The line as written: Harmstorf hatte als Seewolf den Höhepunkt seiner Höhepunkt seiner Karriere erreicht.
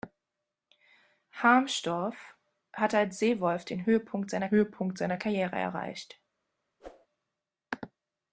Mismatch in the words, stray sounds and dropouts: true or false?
true